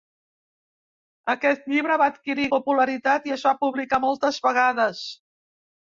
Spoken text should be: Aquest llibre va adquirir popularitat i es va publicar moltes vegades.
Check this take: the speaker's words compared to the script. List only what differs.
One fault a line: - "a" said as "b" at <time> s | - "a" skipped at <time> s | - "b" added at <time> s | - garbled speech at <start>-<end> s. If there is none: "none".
none